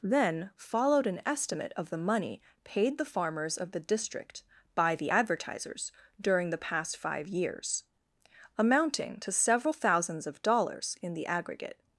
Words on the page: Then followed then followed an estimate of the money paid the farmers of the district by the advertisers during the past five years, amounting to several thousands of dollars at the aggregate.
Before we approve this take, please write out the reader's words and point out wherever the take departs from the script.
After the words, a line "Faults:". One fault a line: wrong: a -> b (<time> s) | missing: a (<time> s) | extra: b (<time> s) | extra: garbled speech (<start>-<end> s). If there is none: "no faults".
Then followed an estimate of the money paid the farmers of the district by the advertisers during the past five years, amounting to several thousands of dollars in the aggregate.
Faults:
missing: then followed (1.1 s)
wrong: at -> in (11.0 s)